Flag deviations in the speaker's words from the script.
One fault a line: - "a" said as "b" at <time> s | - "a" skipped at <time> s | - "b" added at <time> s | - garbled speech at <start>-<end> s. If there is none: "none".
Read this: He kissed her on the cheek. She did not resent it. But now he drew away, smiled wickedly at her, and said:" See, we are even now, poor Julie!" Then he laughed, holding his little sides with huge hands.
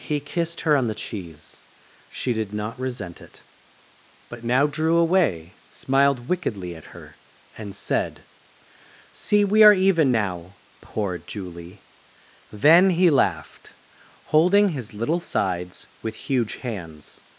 - "cheek" said as "cheese" at 0.9 s
- "he" skipped at 4.7 s